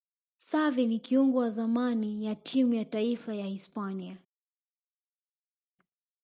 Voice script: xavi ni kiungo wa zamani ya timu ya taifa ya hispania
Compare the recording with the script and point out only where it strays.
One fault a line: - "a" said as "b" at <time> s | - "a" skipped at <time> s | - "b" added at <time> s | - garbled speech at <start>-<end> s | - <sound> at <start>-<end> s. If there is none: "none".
none